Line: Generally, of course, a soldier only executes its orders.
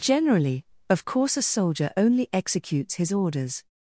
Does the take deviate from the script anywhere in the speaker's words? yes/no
yes